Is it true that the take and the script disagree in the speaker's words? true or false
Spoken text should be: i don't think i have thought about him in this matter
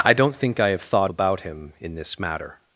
false